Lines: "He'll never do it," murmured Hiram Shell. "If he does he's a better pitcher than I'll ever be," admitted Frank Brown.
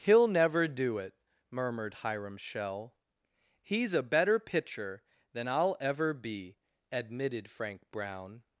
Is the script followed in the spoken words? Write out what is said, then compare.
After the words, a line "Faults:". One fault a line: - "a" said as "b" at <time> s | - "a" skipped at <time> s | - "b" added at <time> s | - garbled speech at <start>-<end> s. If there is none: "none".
"He'll never do it," murmured Hiram Shell. "He's a better pitcher than I'll ever be," admitted Frank Brown.
Faults:
- "If he does" skipped at 3.0 s